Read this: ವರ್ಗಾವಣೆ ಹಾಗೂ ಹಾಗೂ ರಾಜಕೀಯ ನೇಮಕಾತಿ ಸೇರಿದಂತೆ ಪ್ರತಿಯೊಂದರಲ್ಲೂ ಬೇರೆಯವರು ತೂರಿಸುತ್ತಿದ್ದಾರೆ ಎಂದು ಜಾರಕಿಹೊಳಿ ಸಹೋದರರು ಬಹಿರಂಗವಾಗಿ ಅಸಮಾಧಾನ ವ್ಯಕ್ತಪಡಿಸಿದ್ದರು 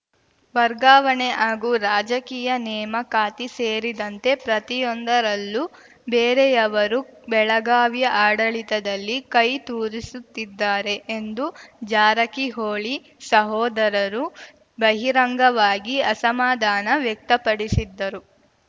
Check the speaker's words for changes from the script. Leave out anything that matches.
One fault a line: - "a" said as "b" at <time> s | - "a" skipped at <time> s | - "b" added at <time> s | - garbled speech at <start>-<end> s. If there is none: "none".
- "ಹಾಗೂ" skipped at 1.7 s
- "ಬೆಳಗಾವಿಯ ಆಡಳಿತದಲ್ಲಿ ಕೈ" added at 7.3 s